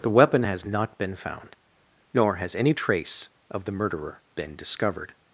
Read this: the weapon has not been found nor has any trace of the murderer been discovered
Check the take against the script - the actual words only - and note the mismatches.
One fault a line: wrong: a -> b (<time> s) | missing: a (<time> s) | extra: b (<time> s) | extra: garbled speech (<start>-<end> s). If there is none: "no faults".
no faults